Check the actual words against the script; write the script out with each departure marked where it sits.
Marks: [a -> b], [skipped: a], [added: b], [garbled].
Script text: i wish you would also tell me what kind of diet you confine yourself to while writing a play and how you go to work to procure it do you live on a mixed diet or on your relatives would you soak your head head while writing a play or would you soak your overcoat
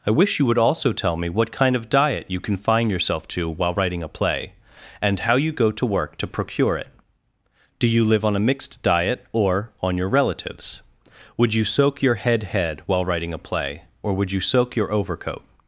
i wish you would also tell me what kind of diet you confine yourself to while writing a play and how you go to work to procure it do you live on a mixed diet or on your relatives would you soak your head head while writing a play or would you soak your overcoat